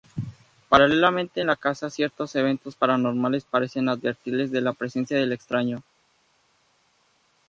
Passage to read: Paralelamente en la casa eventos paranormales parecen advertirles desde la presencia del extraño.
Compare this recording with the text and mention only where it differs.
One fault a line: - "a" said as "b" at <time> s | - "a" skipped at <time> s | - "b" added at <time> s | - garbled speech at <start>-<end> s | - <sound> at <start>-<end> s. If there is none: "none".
- "ciertos" added at 1.9 s
- "desde" said as "de" at 4.5 s